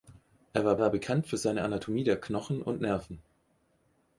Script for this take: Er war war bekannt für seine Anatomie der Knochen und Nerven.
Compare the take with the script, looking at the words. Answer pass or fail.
pass